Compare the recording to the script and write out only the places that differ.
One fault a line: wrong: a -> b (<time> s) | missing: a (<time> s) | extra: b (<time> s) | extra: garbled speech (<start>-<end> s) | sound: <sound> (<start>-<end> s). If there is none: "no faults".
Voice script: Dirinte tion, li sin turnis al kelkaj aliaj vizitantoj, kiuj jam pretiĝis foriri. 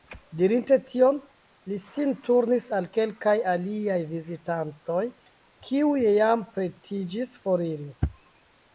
no faults